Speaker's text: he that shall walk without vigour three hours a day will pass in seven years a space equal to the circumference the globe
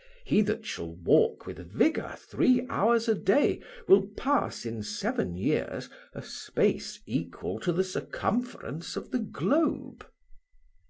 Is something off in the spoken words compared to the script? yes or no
yes